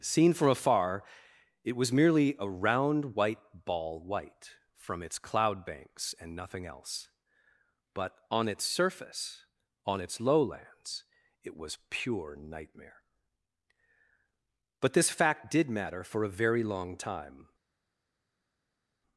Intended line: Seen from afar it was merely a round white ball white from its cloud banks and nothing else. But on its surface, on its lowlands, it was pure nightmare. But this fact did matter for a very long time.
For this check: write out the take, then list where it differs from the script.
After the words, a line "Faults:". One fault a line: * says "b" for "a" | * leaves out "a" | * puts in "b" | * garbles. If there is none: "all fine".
Seen from afar it was merely a round white ball white from its cloud banks and nothing else. But on its surface, on its lowlands, it was pure nightmare. But this fact did matter for a very long time.
Faults:
all fine